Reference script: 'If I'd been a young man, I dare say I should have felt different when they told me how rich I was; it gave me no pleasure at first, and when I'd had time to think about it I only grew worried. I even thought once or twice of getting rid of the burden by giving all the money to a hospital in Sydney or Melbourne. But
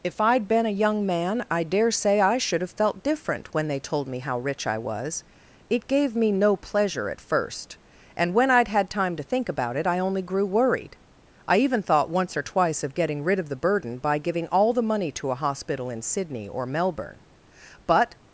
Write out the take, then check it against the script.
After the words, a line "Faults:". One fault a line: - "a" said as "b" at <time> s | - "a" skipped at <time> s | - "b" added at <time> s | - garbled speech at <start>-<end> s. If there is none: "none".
'If I'd been a young man, I dare say I should have felt different when they told me how rich I was; it gave me no pleasure at first, and when I'd had time to think about it I only grew worried. I even thought once or twice of getting rid of the burden by giving all the money to a hospital in Sydney or Melbourne. But
Faults:
none